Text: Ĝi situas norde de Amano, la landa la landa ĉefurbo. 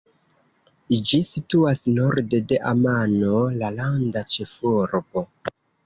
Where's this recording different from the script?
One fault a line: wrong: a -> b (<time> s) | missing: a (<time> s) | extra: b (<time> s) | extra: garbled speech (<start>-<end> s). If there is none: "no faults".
missing: la landa (4.3 s)